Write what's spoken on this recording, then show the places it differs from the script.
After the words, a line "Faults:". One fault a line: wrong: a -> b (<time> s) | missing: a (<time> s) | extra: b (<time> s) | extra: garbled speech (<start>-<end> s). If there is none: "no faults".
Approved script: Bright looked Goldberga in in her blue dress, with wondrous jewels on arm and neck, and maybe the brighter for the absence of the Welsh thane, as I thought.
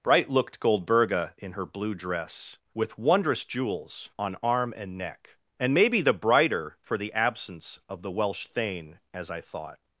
Bright looked Goldberga in her blue dress, with wondrous jewels on arm and neck, and maybe the brighter for the absence of the Welsh thane, as I thought.
Faults:
missing: in (1.5 s)